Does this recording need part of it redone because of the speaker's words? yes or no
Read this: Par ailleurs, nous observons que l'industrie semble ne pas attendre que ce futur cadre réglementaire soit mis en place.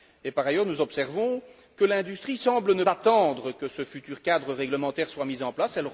yes